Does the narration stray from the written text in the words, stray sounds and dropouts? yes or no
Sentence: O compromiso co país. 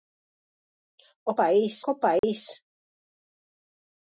yes